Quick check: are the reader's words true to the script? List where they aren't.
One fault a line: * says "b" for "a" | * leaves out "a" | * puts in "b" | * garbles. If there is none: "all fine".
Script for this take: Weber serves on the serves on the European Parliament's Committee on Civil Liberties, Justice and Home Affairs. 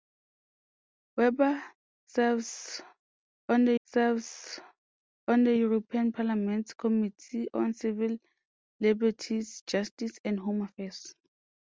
all fine